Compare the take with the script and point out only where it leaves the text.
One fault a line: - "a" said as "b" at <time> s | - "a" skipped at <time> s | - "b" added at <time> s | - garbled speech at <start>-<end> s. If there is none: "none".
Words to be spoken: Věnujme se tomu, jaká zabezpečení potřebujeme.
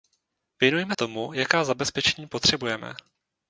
- "se" skipped at 0.9 s